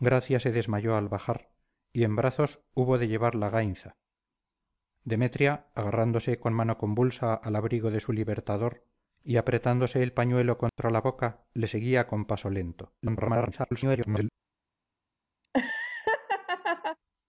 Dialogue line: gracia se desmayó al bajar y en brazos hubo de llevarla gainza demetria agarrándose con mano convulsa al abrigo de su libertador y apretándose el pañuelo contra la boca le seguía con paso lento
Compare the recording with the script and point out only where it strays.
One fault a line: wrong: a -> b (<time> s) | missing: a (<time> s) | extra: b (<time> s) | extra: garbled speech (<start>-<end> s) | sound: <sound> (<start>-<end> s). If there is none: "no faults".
sound: dropout (10.7-10.8 s)
extra: garbled speech (13.0-14.3 s)
sound: laugh (15.4-17.0 s)